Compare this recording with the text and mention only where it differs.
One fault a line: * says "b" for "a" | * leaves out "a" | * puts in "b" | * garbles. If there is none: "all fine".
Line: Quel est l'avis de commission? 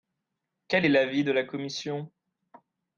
* puts in "la"